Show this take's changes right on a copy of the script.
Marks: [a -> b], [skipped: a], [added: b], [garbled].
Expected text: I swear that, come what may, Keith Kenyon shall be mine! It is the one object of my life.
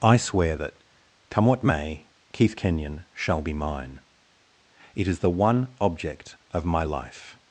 I swear that, come what may, Keith Kenyon shall be mine! It is the one object of my life.